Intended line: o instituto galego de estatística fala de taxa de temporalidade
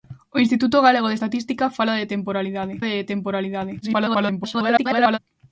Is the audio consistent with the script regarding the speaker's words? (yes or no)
no